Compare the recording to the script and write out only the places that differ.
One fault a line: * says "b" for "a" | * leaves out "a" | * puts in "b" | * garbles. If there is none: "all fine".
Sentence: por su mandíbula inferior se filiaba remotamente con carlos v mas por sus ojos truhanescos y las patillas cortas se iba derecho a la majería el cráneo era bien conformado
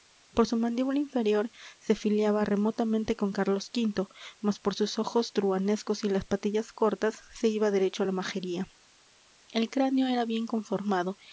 all fine